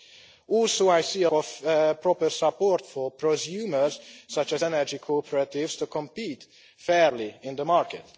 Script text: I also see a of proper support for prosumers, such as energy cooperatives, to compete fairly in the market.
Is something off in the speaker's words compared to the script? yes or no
no